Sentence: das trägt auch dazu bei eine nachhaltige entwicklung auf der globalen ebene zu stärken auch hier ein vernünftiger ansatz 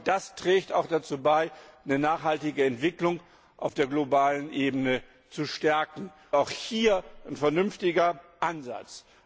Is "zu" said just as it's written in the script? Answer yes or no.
yes